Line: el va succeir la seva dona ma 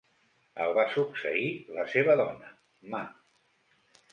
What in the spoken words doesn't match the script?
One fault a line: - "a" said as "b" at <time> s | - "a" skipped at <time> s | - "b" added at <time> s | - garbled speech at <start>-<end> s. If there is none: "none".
none